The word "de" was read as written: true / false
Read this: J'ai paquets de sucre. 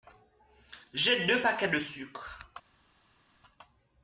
true